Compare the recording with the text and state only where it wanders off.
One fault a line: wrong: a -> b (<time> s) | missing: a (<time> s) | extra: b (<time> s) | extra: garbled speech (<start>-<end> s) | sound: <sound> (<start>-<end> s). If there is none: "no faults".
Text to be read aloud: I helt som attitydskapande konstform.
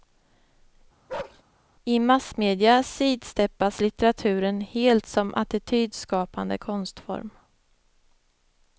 sound: bark (1.1-1.4 s)
extra: massmedia sidsteppas litteraturen (2.0 s)